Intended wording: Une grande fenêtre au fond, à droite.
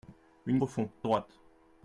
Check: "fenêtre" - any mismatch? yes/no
yes